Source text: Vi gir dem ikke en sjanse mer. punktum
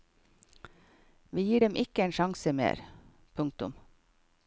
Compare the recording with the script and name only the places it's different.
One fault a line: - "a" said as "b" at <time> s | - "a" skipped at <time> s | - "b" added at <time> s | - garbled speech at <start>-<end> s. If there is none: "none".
none